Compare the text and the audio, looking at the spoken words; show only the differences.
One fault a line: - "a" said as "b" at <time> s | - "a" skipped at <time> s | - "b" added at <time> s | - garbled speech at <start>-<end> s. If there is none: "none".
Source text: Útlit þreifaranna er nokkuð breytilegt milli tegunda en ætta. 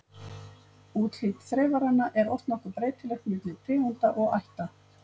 - "oft" added at 2.3 s
- "en" said as "og" at 4.2 s